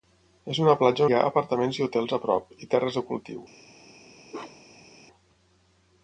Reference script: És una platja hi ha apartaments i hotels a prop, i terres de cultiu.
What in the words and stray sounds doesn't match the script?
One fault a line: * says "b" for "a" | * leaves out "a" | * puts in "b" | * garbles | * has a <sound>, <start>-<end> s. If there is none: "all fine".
* has a bark, 4.3-4.9 s